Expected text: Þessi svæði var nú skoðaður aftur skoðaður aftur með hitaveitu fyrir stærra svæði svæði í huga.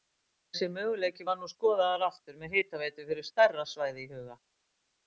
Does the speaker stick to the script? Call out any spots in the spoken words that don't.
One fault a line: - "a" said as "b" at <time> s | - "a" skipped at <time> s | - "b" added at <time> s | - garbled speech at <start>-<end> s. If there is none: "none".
- "svæði" said as "möguleiki" at 0.8 s
- "skoðaður aftur" skipped at 2.4 s
- "svæði" skipped at 4.1 s